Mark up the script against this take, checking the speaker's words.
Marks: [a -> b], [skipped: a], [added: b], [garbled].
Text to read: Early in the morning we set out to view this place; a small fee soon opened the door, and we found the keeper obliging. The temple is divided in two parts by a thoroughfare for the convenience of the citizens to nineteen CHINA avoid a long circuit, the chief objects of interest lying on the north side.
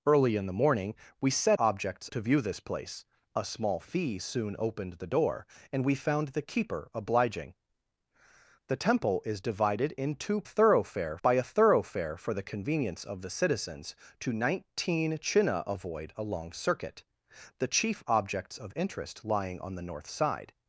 Early in the morning we set [out -> objects] to view this place; a small fee soon opened the door, and we found the keeper obliging. The temple is divided in two [parts -> thoroughfare] by a thoroughfare for the convenience of the citizens to nineteen CHINA avoid a long circuit, the chief objects of interest lying on the north side.